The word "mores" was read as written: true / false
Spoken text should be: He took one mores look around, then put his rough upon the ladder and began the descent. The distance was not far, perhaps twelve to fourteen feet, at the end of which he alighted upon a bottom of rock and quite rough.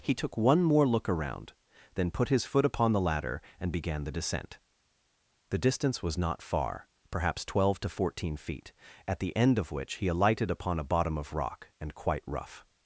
false